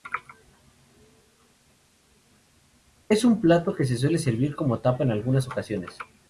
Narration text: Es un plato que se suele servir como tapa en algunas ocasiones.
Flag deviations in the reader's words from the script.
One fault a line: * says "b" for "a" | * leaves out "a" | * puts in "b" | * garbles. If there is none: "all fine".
all fine